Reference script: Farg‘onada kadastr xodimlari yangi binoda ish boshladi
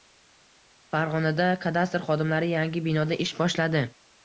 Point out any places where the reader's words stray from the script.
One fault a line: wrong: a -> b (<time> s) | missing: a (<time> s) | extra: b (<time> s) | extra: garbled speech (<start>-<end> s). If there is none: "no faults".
no faults